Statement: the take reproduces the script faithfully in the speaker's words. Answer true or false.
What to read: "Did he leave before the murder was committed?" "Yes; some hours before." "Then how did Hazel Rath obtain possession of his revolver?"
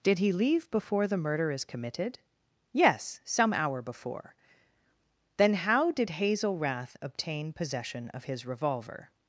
false